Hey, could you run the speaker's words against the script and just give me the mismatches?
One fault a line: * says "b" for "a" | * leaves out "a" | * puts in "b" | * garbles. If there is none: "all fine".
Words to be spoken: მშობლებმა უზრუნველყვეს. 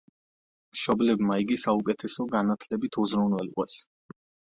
* puts in "იგი საუკეთესო განათლებით"